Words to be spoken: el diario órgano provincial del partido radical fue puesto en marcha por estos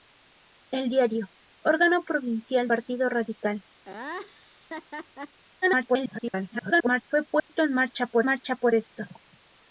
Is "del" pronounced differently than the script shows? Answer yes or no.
yes